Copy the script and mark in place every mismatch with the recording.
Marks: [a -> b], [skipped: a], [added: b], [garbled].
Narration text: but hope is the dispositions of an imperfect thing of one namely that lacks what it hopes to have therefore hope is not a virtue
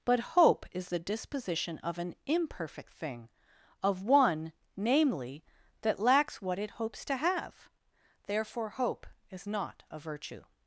but hope is the [dispositions -> disposition] of an imperfect thing of one namely that lacks what it hopes to have therefore hope is not a virtue